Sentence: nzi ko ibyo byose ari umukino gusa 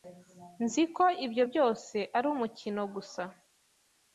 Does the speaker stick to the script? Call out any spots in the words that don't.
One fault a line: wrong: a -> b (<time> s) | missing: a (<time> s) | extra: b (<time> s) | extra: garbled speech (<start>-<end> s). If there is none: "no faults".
no faults